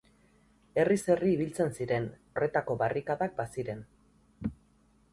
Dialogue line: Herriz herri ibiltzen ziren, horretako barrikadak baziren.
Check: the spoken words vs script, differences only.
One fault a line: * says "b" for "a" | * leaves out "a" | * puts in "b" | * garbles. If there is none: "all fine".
all fine